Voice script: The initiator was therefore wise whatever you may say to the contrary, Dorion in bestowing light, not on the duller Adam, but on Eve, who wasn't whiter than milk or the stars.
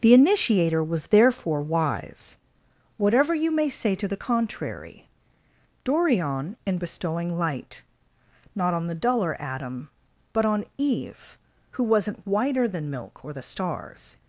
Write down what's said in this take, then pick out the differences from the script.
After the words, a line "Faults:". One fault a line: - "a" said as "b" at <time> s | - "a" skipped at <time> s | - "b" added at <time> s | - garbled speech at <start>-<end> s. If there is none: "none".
The initiator was therefore wise whatever you may say to the contrary, Dorion in bestowing light, not on the duller Adam, but on Eve, who wasn't whiter than milk or the stars.
Faults:
none